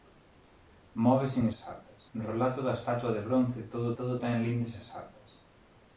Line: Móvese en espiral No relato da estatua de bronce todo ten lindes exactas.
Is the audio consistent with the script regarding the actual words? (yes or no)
no